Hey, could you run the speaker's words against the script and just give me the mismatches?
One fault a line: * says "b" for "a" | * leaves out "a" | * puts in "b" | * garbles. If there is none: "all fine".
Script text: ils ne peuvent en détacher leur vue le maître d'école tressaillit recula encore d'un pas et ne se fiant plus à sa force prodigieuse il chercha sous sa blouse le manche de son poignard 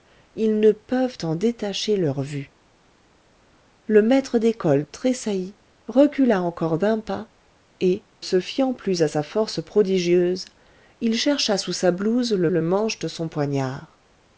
* leaves out "ne"
* puts in "le"